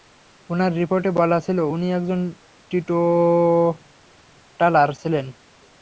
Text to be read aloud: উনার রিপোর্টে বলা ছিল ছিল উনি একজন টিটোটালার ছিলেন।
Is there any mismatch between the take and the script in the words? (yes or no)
yes